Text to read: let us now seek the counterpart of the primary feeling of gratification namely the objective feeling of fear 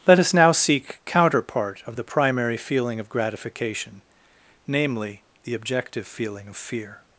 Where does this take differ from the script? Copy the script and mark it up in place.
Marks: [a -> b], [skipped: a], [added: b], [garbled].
let us now seek [skipped: the] counterpart of the primary feeling of gratification namely the objective feeling of fear